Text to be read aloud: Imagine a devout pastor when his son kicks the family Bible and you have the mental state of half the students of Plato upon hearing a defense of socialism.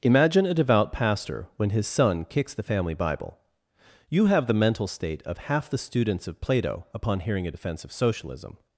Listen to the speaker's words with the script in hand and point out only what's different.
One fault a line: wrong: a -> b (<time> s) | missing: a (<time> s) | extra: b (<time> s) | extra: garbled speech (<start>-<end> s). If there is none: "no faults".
missing: and (3.4 s)